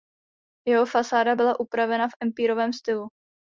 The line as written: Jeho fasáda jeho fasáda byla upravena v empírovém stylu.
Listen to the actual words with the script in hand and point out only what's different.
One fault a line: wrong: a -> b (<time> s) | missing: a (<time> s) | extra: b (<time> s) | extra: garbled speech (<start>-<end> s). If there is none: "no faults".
missing: jeho fasáda (1.4 s)